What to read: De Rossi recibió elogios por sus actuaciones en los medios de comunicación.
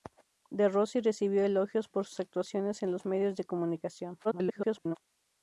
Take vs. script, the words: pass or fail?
fail